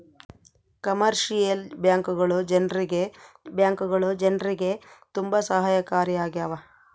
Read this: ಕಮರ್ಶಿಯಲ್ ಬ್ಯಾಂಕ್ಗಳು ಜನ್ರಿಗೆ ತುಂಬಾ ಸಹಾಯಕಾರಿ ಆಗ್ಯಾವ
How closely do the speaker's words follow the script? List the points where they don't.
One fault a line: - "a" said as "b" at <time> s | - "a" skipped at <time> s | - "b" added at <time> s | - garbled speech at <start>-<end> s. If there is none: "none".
- "ಬ್ಯಾಂಕ್ಗಳು ಜನ್ರಿಗೆ" added at 3.5 s